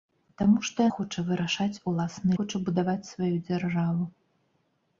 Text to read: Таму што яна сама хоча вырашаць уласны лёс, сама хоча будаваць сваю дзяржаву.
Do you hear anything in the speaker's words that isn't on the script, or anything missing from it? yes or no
yes